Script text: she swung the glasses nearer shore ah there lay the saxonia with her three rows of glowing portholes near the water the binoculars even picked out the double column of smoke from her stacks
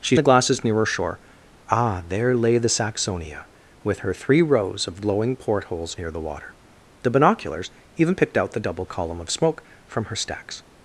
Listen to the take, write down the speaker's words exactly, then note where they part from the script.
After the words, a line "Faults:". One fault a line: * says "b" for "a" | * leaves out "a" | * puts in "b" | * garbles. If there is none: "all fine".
she the glasses nearer shore ah there lay the saxonia with her three rows of glowing portholes near the water the binoculars even picked out the double column of smoke from her stacks
Faults:
* leaves out "swung"